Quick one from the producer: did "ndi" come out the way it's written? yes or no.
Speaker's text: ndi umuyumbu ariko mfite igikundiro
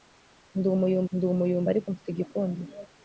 yes